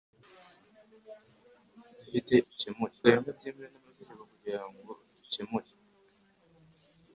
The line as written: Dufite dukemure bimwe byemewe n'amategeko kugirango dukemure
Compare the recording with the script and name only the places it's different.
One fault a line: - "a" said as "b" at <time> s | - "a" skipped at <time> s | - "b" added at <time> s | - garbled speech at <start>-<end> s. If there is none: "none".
none